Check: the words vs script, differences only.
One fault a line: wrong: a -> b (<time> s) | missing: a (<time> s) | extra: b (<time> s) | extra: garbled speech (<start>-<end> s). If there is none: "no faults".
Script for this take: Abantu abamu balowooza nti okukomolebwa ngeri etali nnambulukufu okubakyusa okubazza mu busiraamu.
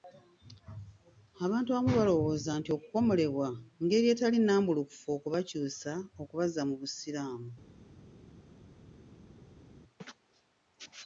no faults